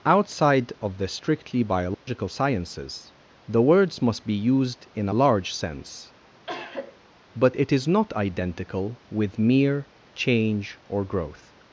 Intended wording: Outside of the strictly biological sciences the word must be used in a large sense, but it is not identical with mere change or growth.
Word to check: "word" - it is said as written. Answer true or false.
false